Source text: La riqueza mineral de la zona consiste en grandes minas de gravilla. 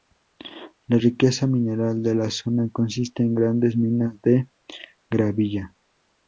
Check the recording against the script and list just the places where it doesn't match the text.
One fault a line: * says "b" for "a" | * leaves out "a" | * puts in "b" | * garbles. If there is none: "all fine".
all fine